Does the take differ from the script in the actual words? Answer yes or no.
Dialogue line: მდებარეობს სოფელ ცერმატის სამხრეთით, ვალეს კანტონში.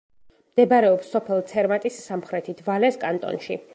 no